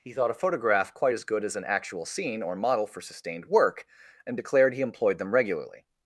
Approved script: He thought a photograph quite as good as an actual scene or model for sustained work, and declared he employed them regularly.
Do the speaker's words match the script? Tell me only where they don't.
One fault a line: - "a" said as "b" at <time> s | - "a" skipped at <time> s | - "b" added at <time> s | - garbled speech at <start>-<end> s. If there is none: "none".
none